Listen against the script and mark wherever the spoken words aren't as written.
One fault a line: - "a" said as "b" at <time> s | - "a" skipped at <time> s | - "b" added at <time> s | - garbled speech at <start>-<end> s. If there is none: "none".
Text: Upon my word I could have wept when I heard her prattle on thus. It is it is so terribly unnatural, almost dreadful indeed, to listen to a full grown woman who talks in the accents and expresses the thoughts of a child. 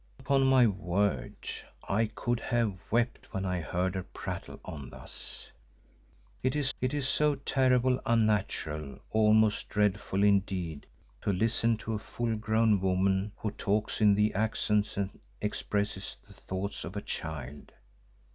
none